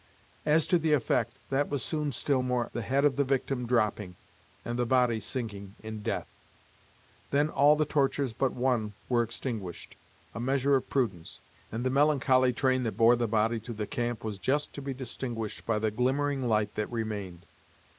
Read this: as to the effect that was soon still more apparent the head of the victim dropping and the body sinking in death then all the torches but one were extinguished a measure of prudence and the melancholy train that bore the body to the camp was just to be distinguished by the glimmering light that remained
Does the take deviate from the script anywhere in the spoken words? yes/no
yes